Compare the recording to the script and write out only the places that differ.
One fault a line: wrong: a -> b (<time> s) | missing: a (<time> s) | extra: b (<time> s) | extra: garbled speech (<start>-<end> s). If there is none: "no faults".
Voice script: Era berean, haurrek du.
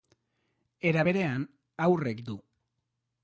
no faults